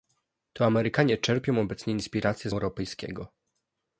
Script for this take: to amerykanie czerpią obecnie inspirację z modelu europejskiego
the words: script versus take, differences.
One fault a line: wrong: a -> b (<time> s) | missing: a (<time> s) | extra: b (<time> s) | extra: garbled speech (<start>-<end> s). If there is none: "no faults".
missing: modelu (2.5 s)